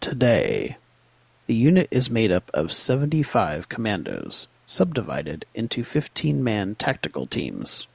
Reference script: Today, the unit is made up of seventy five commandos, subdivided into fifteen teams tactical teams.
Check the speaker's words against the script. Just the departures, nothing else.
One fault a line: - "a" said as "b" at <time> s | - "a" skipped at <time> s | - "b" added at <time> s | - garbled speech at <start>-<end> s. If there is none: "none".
- "teams" said as "man" at 6.4 s